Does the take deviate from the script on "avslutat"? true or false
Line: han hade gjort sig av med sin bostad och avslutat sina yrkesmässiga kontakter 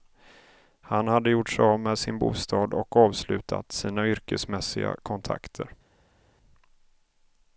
false